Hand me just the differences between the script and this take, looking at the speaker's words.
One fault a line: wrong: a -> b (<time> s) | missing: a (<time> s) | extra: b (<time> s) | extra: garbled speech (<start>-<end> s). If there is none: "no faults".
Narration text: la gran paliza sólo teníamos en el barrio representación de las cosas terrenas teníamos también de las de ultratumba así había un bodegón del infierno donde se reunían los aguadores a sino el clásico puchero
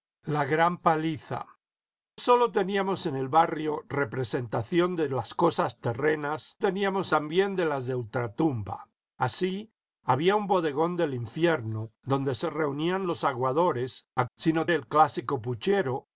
no faults